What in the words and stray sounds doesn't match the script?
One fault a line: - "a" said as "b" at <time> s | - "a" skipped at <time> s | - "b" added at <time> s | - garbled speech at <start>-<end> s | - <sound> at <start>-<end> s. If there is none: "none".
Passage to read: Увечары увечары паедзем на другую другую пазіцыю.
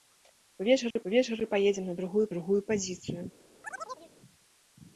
- dropout at 0.9-1.0 s
- chirp at 3.6-4.1 s